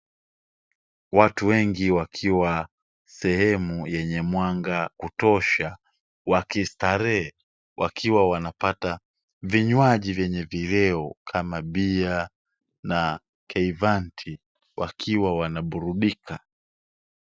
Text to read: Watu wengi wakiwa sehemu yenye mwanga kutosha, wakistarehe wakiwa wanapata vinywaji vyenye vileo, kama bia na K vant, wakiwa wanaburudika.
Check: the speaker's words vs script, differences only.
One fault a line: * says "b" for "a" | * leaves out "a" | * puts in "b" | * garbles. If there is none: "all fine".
all fine